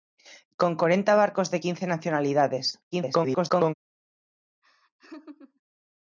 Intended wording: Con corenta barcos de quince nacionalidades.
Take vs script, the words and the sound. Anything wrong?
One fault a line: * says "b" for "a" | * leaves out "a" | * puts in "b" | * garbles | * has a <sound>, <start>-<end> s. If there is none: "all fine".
* garbles
* has a laugh, 4.6-5.6 s